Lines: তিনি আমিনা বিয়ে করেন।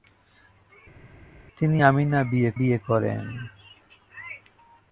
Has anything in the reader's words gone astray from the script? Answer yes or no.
yes